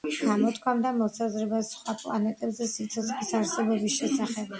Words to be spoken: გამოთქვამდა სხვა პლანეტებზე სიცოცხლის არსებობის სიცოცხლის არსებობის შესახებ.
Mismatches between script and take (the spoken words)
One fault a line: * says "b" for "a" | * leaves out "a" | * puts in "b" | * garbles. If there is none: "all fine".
* puts in "მოსაზრებას"
* leaves out "სიცოცხლის არსებობის"